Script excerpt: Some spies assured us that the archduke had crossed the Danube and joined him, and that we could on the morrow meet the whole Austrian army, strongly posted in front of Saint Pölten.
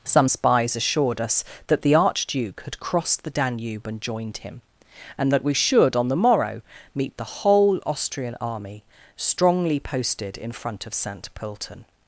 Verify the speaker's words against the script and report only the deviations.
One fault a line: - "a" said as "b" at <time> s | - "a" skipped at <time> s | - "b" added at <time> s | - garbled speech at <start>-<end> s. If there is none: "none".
- "could" said as "should" at 5.5 s